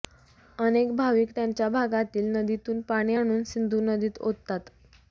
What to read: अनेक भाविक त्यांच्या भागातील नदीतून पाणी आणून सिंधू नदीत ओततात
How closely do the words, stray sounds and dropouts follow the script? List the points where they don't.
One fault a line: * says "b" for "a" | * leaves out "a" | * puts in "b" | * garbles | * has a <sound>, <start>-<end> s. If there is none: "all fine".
all fine